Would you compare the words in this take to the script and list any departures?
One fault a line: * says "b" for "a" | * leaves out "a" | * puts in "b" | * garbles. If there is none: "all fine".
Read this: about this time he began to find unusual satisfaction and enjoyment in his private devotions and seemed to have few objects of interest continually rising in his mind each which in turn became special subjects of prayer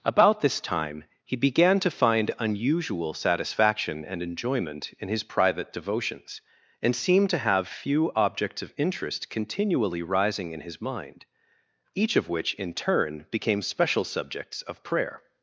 * puts in "of"